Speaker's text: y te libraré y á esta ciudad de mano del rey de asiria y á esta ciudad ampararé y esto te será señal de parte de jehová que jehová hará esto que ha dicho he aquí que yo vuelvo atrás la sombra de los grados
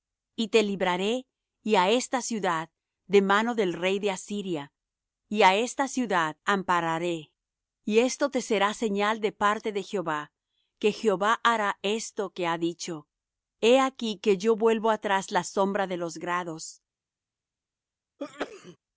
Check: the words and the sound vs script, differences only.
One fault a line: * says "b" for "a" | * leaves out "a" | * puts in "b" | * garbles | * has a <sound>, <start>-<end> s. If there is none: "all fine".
* has a sneeze, 18.2-18.8 s